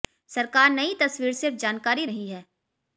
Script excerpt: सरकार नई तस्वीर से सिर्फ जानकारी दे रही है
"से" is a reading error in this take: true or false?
true